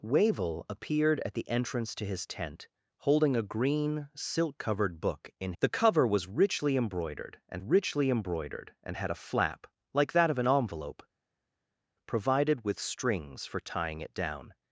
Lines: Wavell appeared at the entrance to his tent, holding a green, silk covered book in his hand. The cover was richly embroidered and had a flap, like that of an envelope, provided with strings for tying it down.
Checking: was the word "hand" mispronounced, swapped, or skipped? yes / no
yes